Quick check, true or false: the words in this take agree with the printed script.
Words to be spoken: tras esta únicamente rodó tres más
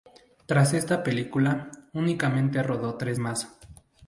false